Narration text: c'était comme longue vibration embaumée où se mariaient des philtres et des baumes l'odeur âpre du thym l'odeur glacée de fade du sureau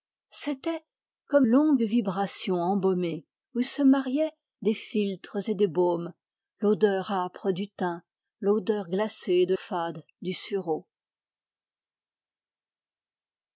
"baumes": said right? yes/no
yes